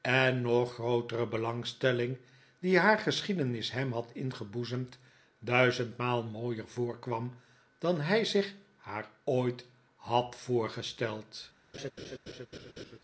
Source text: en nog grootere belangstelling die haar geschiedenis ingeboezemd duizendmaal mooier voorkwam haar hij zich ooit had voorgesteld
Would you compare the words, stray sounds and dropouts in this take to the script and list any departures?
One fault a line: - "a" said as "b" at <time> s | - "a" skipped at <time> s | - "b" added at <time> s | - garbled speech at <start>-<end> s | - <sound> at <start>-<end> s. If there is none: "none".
- "hem had" added at 3.7 s
- "haar" said as "dan" at 7.8 s
- "haar" added at 8.8 s
- laugh at 11.7-13.0 s